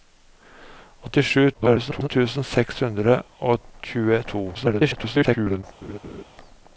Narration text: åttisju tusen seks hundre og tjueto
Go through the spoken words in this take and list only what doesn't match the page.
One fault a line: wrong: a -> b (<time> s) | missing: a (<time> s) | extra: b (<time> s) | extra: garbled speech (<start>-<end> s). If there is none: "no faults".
extra: garbled speech (1.5-2.1 s)
extra: garbled speech (4.5-5.6 s)